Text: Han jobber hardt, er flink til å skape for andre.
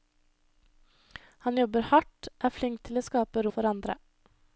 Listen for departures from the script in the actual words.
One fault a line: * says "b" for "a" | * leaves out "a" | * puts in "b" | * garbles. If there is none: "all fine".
all fine